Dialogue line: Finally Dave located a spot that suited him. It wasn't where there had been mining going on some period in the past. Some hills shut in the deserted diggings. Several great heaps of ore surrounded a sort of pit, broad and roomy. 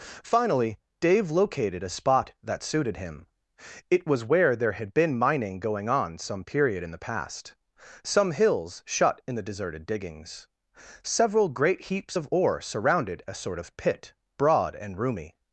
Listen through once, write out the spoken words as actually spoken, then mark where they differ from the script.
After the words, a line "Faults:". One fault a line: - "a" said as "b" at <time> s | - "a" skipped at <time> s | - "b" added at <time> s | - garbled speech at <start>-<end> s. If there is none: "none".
Finally Dave located a spot that suited him. It was where there had been mining going on some period in the past. Some hills shut in the deserted diggings. Several great heaps of ore surrounded a sort of pit, broad and roomy.
Faults:
- "wasn't" said as "was" at 4.1 s